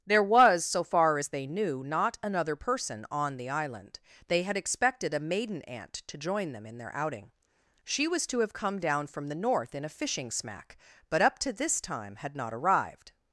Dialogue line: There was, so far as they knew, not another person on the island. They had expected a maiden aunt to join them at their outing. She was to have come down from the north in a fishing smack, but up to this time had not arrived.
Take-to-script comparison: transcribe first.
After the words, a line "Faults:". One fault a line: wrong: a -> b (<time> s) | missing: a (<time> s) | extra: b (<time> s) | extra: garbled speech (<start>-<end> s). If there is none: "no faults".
There was, so far as they knew, not another person on the island. They had expected a maiden aunt to join them in their outing. She was to have come down from the north in a fishing smack, but up to this time had not arrived.
Faults:
wrong: at -> in (6.6 s)